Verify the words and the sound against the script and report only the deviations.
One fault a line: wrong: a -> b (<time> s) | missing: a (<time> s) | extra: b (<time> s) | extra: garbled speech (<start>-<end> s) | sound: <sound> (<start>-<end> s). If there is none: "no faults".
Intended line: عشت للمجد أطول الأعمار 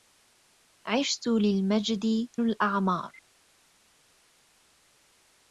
missing: أطول (2.3 s)